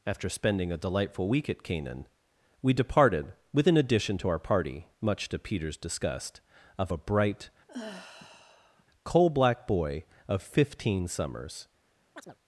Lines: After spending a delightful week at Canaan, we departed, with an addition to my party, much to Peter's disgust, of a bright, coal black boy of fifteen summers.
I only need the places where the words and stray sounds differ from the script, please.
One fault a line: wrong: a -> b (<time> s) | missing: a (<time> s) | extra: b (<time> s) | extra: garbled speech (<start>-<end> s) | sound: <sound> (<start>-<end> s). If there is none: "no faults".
wrong: my -> our (4.3 s)
sound: sigh (7.7-8.8 s)
sound: chirp (12.1-12.4 s)